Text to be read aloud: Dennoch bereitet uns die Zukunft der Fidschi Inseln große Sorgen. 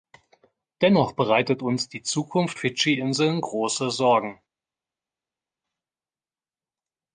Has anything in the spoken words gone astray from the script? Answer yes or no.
yes